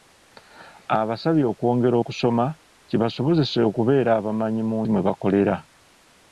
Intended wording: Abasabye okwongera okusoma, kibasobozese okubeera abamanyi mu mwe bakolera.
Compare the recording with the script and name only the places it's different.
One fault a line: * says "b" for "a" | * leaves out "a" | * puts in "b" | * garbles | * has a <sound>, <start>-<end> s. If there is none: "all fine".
all fine